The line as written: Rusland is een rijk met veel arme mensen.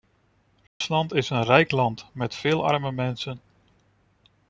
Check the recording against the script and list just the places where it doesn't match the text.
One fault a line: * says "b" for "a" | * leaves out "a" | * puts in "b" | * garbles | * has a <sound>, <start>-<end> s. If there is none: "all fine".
* has a dropout, 0.7-0.8 s
* puts in "land"